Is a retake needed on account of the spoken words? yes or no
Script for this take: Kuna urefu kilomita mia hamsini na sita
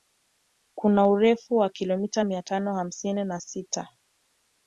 yes